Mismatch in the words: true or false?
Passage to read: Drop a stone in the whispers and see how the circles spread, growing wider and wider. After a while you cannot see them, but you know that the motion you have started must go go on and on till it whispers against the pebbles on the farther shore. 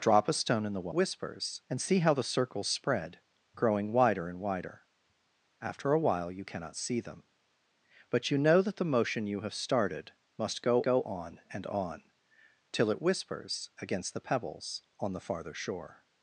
false